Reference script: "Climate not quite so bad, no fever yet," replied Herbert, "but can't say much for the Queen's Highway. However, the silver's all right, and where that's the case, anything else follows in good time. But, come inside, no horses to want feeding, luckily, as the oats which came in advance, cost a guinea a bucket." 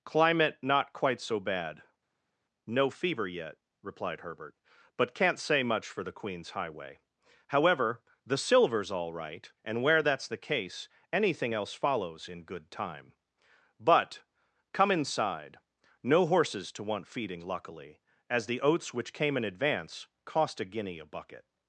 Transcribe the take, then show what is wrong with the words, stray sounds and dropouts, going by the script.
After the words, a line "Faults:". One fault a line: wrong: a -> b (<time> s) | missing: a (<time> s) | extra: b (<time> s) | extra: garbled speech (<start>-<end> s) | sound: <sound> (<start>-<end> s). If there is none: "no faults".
"Climate not quite so bad, no fever yet," replied Herbert, "but can't say much for the Queen's Highway. However, the silver's all right, and where that's the case, anything else follows in good time. But, come inside, no horses to want feeding, luckily, as the oats which came in advance, cost a guinea a bucket."
Faults:
no faults